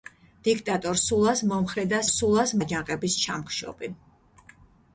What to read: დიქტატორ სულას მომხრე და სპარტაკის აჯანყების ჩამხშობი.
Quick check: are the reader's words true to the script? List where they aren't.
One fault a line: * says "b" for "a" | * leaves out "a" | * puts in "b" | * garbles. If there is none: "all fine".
* says "სულას" for "სპარტაკის"